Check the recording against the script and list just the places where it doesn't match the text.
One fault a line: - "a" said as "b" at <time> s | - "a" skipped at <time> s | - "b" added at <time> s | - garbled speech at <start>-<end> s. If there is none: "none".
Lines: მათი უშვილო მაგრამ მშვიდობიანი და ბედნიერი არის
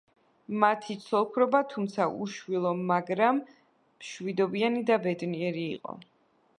- "ცოლ ქმრობა თუმცა" added at 1.0 s
- "არის" said as "იყო" at 5.8 s